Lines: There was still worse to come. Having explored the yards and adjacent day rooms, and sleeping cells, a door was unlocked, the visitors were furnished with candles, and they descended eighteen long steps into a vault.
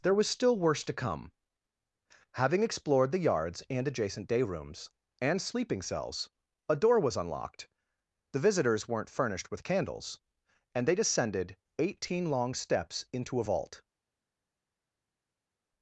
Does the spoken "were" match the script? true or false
false